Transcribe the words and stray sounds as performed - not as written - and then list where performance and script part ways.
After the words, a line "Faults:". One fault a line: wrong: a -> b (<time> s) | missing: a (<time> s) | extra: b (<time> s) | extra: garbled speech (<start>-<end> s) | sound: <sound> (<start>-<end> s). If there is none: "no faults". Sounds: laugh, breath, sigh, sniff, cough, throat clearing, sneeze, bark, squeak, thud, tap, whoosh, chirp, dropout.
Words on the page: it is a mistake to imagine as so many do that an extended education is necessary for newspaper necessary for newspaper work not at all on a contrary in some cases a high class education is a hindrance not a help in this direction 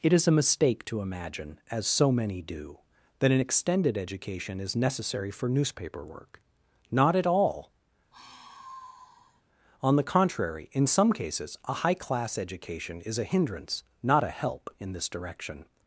it is a mistake to imagine as so many do that an extended education is necessary for newspaper work not at all on the contrary in some cases a high class education is a hindrance not a help in this direction
Faults:
missing: necessary for newspaper (6.1 s)
sound: sigh (8.1-9.4 s)
wrong: a -> the (10.0 s)